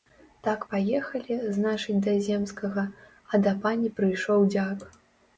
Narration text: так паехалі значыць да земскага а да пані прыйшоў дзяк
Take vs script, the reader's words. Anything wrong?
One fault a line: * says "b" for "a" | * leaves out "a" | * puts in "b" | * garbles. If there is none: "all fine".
all fine